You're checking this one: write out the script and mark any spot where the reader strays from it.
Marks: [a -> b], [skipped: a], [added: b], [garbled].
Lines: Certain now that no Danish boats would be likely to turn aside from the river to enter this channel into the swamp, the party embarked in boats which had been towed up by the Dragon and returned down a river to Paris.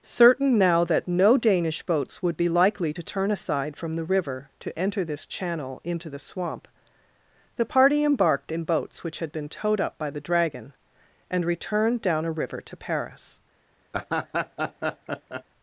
Certain now that no Danish boats would be likely to turn aside from the river to enter this channel into the swamp, the party embarked in boats which had been towed up by the Dragon and returned down a river to Paris.